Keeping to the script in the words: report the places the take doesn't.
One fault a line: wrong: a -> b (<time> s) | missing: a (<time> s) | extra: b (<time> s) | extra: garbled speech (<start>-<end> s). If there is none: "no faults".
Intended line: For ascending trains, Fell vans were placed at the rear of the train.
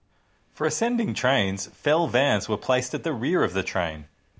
no faults